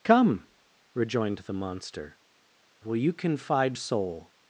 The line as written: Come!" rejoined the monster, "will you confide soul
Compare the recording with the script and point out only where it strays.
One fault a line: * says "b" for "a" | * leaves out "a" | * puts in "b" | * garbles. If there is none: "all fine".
all fine